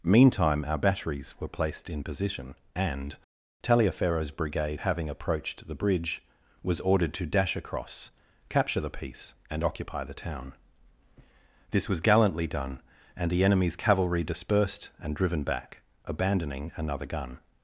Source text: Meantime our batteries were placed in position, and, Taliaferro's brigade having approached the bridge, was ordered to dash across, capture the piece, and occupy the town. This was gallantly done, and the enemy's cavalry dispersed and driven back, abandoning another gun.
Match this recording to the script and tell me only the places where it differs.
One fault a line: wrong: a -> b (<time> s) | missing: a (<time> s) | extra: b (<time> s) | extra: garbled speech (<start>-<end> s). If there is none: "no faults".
no faults